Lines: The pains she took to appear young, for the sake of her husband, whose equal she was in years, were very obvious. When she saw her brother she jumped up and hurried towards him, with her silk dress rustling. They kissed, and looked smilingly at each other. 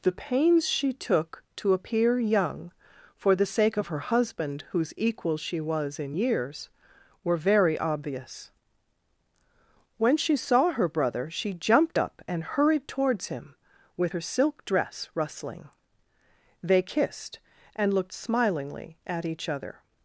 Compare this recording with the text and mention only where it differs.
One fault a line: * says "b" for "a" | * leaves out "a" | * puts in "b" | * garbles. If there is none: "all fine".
all fine